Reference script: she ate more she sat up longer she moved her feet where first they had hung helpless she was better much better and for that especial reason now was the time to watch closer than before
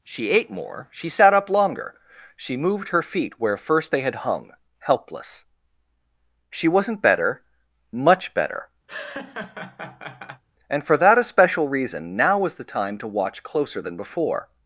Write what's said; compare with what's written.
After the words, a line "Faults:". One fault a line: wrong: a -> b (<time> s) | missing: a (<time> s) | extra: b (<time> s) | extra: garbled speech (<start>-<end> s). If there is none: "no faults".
she ate more she sat up longer she moved her feet where first they had hung helpless she wasn't better much better and for that especial reason now was the time to watch closer than before
Faults:
wrong: was -> wasn't (6.7 s)